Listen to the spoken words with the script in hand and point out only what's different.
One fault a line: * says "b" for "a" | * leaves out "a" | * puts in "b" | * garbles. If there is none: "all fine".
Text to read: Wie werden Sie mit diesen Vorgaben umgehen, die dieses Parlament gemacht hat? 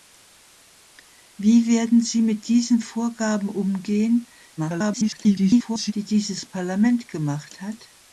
* garbles